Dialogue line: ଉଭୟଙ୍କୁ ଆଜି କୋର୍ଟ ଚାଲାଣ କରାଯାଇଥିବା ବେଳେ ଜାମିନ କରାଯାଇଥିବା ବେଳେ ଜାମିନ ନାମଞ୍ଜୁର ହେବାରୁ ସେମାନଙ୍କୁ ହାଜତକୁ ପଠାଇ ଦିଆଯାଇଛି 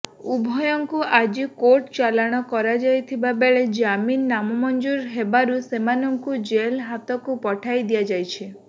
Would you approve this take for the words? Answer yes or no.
no